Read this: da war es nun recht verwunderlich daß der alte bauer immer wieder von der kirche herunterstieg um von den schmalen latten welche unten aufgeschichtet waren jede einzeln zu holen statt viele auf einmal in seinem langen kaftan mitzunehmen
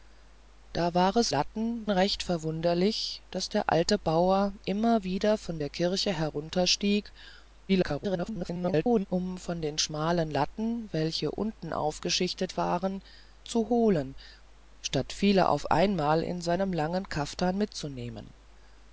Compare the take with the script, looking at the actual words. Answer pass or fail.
fail